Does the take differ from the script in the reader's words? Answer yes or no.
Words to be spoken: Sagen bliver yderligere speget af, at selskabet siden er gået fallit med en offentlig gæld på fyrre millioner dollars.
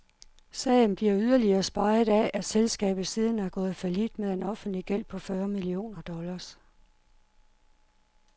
no